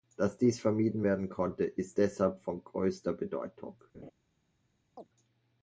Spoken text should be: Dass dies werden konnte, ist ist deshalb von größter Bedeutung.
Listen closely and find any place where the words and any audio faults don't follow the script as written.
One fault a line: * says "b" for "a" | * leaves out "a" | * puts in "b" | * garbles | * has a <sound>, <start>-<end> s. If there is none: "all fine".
* puts in "vermieden"
* leaves out "ist"
* has a laugh, 3.9-4.1 s
* has a chirp, 5.0-5.1 s